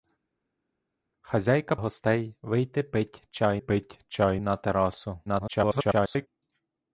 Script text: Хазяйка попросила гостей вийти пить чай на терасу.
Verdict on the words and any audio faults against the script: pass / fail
fail